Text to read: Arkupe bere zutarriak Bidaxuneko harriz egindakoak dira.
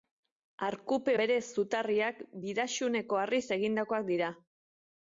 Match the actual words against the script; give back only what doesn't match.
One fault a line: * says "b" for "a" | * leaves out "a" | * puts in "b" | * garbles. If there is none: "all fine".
all fine